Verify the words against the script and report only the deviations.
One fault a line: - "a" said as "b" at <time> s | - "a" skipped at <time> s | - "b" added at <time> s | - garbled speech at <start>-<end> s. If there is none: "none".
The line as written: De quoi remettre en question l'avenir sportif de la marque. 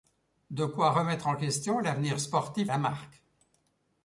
- "de" skipped at 2.7 s